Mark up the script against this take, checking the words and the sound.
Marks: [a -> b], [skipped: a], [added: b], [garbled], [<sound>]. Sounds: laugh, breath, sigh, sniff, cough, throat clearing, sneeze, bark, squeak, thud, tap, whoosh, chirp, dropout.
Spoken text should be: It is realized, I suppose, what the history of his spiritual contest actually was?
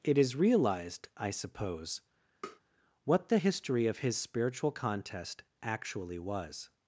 It is realized, I suppose, [tap] what the history of his spiritual contest actually was?